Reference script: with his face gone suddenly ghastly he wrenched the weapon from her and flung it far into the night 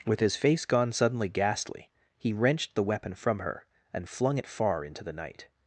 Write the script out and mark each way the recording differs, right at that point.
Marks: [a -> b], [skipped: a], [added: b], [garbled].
with his face gone suddenly ghastly he wrenched the weapon from her and flung it far into the night